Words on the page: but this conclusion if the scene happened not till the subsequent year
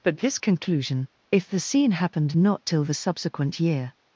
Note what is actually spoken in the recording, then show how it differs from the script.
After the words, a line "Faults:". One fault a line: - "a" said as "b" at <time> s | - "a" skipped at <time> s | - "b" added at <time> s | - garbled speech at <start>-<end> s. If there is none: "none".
but this conclusion if the scene happened not till the subsequent year
Faults:
none